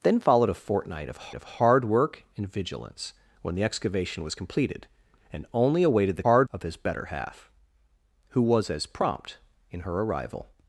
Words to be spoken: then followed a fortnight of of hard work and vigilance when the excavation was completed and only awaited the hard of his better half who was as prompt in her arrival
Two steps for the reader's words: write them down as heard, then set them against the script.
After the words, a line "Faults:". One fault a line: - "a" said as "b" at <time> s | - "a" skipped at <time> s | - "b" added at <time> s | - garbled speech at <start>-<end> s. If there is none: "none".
then followed a fortnight of of hard work and vigilance when the excavation was completed and only awaited the hard of his better half who was as prompt in her arrival
Faults:
none